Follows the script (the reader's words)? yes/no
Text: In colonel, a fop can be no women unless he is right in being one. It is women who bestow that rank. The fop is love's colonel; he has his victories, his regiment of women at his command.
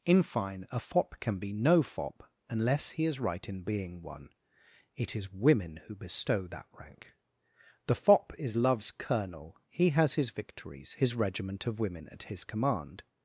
no